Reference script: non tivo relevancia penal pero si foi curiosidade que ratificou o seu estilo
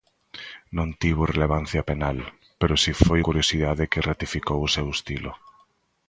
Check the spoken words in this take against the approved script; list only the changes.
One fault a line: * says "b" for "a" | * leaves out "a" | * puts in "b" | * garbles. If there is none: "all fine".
all fine